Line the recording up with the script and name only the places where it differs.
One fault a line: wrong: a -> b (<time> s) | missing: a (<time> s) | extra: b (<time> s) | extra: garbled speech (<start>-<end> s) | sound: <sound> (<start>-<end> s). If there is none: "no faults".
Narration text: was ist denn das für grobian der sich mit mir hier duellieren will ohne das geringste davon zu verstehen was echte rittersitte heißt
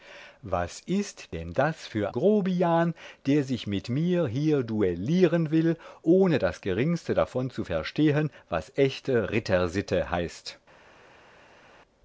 no faults